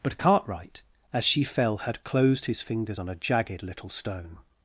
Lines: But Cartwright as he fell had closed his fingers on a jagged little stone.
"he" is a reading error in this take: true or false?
true